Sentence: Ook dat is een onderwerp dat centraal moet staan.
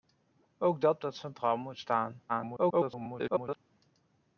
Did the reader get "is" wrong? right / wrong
wrong